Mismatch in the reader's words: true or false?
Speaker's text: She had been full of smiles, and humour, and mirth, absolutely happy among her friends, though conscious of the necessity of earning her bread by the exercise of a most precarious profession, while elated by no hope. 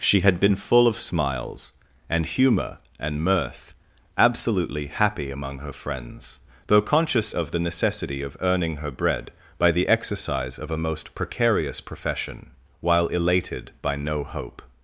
false